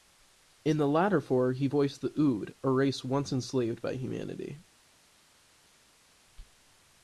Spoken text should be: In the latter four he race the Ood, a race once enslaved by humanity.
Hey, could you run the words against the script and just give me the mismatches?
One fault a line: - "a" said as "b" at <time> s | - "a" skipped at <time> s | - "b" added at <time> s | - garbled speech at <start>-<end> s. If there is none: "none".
- "race" said as "voiced" at 1.7 s